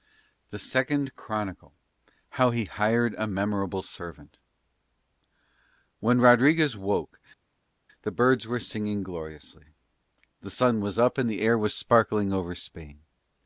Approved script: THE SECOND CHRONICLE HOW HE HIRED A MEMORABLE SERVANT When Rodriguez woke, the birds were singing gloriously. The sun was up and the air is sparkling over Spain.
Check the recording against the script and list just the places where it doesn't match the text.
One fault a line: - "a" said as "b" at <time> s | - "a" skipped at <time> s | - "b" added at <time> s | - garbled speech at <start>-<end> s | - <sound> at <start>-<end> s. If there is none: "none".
- "is" said as "was" at 11.6 s